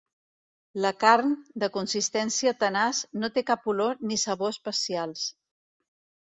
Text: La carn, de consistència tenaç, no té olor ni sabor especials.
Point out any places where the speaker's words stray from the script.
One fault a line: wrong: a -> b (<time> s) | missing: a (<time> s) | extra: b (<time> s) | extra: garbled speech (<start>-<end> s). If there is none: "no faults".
extra: cap (3.5 s)